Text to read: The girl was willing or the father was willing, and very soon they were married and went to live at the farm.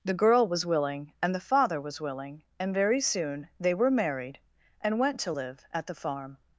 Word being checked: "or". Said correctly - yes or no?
no